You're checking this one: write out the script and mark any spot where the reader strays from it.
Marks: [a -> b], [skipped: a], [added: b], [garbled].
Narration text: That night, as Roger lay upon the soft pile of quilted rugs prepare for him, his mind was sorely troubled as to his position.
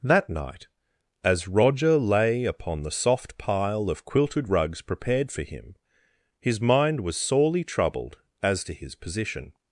That night, as Roger lay upon the soft pile of quilted rugs [prepare -> prepared] for him, his mind was sorely troubled as to his position.